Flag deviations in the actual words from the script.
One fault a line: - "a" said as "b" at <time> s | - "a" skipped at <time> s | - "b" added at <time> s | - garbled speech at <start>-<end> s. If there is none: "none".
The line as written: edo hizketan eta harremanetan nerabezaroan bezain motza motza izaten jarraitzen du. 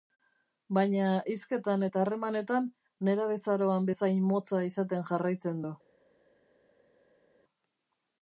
- "edo" said as "baina" at 0.8 s
- "motza" skipped at 4.6 s